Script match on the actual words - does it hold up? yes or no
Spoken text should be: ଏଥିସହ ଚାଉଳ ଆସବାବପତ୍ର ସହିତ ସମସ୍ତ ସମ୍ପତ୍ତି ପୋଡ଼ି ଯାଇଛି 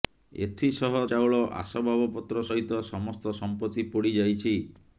yes